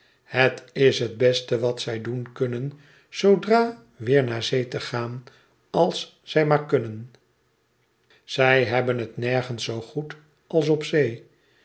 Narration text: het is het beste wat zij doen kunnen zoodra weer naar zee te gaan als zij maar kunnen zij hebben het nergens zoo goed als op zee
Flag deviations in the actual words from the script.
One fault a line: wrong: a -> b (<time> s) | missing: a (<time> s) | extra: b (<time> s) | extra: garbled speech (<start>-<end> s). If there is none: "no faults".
no faults